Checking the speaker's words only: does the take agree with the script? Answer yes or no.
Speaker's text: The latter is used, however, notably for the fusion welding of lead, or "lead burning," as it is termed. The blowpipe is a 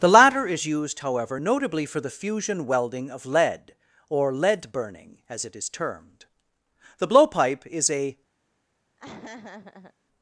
yes